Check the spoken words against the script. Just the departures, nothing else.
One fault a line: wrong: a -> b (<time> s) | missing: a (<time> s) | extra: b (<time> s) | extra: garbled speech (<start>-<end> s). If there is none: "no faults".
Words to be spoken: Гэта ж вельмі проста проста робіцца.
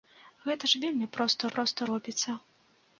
no faults